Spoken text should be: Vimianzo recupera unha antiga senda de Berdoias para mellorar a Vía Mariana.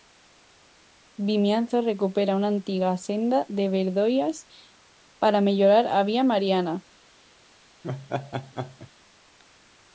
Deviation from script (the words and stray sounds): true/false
true